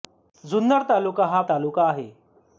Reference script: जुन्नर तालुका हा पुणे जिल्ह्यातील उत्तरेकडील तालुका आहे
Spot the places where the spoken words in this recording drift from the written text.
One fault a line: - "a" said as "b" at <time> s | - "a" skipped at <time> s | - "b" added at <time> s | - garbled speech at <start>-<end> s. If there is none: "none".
- "पुणे जिल्ह्यातील उत्तरेकडील" skipped at 1.4 s